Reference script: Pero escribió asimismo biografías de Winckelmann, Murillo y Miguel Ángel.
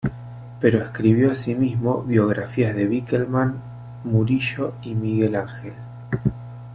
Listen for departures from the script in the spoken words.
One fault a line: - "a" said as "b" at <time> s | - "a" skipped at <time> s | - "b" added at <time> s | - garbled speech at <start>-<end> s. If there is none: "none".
none